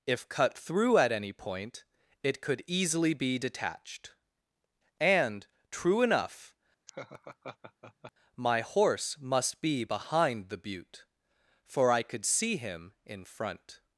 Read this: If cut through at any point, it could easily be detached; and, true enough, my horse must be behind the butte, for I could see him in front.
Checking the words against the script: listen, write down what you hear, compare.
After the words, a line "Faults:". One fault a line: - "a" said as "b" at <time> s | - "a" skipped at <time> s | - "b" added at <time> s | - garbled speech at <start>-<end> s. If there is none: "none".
If cut through at any point, it could easily be detached; and, true enough, my horse must be behind the butte, for I could see him in front.
Faults:
none